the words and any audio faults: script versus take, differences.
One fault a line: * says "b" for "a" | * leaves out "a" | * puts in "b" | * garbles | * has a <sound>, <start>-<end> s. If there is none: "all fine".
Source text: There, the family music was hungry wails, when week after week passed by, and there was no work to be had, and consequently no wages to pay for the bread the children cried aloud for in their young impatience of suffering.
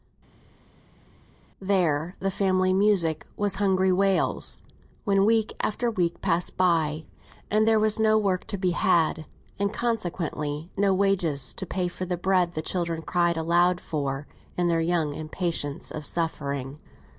all fine